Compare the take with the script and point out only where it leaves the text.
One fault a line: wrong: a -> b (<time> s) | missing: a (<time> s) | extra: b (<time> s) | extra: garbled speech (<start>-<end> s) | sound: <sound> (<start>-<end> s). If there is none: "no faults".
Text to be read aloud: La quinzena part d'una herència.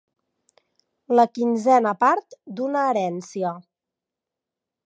no faults